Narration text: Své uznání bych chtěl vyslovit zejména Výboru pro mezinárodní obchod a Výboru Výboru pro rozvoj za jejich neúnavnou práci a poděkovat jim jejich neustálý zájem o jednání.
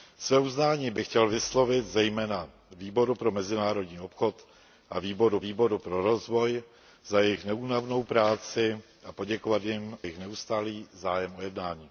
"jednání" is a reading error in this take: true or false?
false